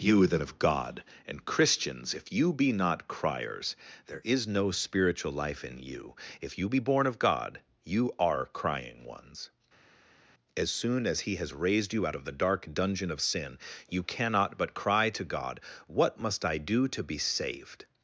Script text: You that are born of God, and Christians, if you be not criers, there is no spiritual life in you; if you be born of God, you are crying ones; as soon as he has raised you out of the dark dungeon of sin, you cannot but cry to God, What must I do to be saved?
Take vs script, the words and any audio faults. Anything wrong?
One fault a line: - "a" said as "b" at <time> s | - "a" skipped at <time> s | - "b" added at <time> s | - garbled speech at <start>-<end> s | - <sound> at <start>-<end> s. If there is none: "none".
- "are born" skipped at 0.4 s